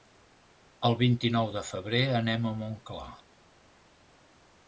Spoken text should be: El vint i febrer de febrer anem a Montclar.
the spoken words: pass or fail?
fail